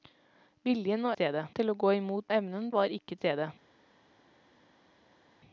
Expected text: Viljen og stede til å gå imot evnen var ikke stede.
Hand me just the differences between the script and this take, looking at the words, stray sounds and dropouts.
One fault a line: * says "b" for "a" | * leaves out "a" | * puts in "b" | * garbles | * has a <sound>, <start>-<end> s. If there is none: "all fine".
all fine